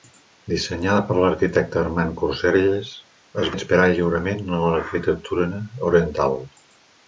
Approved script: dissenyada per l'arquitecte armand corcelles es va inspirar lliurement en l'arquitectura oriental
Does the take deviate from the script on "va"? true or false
true